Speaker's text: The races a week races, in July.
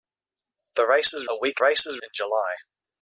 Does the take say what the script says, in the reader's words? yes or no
yes